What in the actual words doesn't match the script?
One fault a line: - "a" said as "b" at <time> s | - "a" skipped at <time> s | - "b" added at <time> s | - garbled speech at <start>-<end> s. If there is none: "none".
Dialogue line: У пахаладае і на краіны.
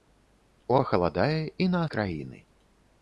none